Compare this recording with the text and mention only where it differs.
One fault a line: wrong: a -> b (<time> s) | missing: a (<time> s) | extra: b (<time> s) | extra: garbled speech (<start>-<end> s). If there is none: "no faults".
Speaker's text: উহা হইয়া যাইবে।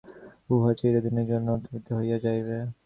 extra: চিরদিনের জন্য অন্তর্হিত (0.8 s)